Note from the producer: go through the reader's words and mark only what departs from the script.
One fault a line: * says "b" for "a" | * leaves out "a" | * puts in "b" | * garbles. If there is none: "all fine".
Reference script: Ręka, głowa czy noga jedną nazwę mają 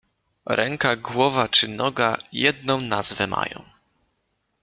all fine